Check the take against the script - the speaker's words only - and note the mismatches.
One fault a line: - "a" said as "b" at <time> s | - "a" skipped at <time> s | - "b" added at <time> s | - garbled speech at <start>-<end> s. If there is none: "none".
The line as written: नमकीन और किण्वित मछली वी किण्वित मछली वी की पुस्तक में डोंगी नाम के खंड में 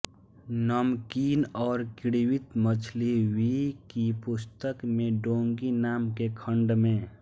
- "किण्वित मछली वी" skipped at 3.5 s